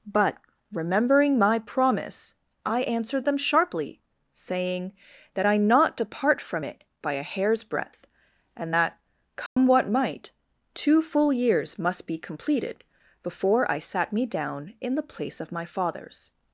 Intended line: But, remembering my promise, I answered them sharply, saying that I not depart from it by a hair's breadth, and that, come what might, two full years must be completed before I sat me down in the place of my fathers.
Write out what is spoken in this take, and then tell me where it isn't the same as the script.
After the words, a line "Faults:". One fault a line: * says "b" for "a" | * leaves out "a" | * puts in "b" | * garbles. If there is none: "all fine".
But, remembering my promise, I answered them sharply, saying that I not depart from it by a hair's breadth, and that, come what might, two full years must be completed before I sat me down in the place of my fathers.
Faults:
all fine